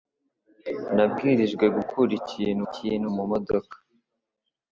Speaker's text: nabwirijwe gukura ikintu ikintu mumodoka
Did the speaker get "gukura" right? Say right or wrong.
right